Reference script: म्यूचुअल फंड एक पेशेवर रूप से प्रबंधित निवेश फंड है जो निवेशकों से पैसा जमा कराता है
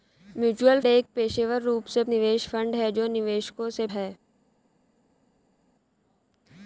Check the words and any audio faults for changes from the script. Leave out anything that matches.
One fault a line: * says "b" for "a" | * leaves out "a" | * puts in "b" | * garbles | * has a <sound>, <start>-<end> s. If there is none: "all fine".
* leaves out "फंड"
* leaves out "प्रबंधित"
* leaves out "पैसा जमा कराता"